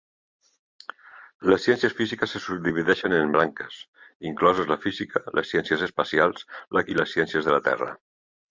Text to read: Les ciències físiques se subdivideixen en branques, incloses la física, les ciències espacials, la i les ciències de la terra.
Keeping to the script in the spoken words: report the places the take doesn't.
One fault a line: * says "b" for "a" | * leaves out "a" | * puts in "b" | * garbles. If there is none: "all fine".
all fine